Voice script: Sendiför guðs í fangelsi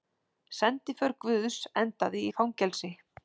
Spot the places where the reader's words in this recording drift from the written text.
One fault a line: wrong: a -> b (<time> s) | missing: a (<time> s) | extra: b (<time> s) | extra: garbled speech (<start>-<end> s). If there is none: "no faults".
extra: endaði (1.8 s)